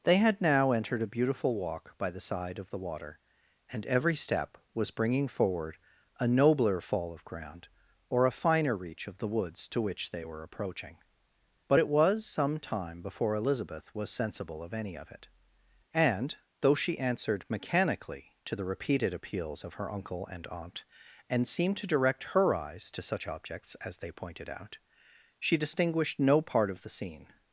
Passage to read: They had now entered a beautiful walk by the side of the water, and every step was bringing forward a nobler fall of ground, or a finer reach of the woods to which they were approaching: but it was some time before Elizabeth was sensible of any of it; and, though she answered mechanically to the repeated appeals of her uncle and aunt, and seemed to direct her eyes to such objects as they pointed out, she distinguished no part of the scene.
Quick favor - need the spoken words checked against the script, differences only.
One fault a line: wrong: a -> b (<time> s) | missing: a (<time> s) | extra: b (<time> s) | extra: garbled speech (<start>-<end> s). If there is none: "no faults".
no faults